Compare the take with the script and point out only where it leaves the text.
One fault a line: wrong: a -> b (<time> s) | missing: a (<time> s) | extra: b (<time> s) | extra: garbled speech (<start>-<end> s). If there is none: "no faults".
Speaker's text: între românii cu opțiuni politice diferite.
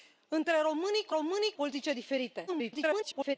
wrong: opțiuni -> românii (1.1 s)
extra: garbled speech (2.5-3.4 s)